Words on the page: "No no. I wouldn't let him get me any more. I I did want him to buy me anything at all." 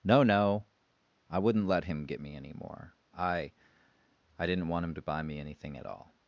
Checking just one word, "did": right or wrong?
wrong